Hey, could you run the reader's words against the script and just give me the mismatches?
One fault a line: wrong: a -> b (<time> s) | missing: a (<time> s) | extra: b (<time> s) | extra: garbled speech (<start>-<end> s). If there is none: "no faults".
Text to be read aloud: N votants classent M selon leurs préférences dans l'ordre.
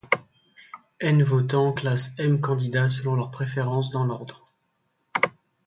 extra: candidats (2.4 s)